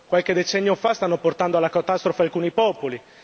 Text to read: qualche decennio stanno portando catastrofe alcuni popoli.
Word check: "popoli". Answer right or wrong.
right